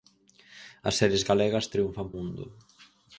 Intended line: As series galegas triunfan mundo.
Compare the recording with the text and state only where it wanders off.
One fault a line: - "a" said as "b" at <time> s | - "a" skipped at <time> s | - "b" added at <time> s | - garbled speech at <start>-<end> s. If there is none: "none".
none